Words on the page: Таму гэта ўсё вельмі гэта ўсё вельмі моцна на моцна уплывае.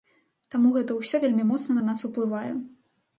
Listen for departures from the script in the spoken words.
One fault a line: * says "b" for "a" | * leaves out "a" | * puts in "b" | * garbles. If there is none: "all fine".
* leaves out "гэта ўсё вельмі"
* says "нас" for "моцна"